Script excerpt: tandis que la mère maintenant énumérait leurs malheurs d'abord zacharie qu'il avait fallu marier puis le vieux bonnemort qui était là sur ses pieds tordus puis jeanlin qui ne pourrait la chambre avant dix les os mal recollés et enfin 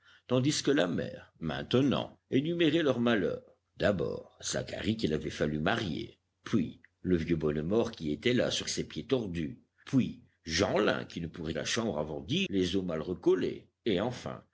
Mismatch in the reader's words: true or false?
false